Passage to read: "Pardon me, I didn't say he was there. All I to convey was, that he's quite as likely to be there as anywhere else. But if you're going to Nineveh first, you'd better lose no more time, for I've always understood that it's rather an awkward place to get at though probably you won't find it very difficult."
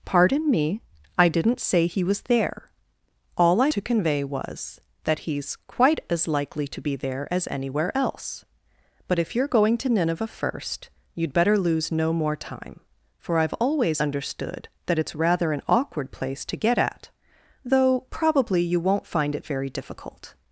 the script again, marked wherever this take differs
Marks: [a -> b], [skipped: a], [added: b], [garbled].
"Pardon me, I didn't say he was there. All I to convey was, that he's quite as likely to be there as anywhere else. But if you're going to Nineveh first, you'd better lose no more time, for I've always understood that it's rather an awkward place to get at though probably you won't find it very difficult."